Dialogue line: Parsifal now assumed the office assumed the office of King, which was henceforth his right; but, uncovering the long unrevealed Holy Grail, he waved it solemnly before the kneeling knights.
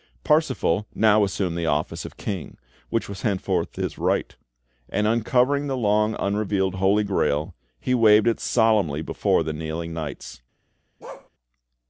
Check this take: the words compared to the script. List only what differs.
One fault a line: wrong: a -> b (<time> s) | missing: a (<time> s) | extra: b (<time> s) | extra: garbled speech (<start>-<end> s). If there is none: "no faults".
missing: assumed the office (2.0 s)
wrong: but -> and (4.9 s)